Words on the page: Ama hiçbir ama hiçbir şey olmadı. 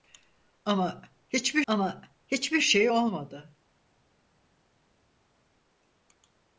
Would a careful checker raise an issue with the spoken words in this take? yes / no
no